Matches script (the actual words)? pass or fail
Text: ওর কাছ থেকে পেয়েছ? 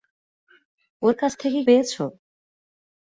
pass